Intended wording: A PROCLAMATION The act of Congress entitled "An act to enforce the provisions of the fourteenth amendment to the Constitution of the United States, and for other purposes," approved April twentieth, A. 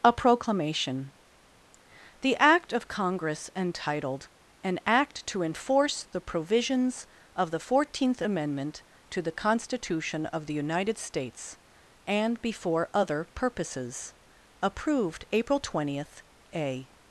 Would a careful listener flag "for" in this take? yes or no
yes